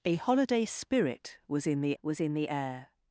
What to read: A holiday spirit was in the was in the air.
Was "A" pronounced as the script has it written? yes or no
yes